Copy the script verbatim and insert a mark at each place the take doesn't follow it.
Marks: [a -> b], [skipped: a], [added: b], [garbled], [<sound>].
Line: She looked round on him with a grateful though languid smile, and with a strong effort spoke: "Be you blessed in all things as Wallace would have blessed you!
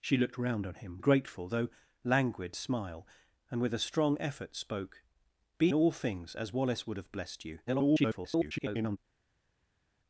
She looked round on him [skipped: with] a grateful though languid smile, and with a strong effort spoke: "Be [skipped: you blessed in] all things as Wallace would have blessed you! [garbled]